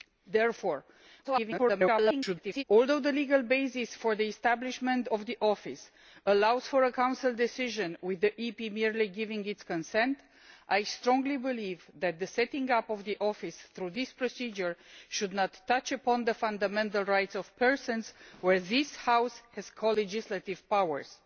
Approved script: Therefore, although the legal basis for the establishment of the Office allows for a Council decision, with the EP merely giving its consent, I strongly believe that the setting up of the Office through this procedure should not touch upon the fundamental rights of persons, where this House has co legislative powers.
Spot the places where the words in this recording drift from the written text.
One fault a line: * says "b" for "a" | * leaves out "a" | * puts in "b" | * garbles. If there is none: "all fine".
* garbles